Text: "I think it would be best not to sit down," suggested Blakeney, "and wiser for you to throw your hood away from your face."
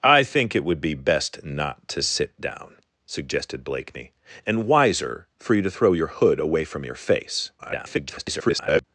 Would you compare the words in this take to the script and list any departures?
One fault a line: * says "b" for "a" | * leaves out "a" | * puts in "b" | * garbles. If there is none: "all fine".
* garbles